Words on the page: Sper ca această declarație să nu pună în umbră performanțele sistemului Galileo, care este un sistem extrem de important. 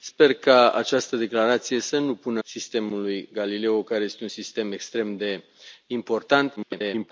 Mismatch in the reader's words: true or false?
true